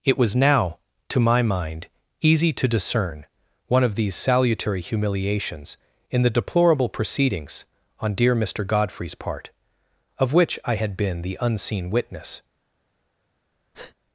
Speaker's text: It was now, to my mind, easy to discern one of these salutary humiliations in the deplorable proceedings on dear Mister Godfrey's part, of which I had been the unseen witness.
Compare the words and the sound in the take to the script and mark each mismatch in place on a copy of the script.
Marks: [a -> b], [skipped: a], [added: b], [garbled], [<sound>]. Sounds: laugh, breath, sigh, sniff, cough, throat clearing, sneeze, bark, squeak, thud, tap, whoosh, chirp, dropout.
It was now, to my mind, easy to discern one of these salutary humiliations in the deplorable proceedings on dear Mister Godfrey's part, of which I had been the unseen witness. [breath]